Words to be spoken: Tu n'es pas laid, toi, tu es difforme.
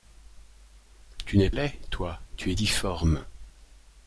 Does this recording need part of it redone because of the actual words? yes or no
yes